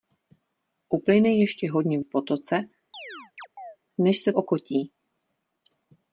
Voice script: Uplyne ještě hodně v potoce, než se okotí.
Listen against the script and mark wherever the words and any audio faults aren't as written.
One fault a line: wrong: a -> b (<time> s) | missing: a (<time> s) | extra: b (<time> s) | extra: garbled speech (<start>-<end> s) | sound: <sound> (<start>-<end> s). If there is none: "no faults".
sound: chirp (2.9-3.8 s)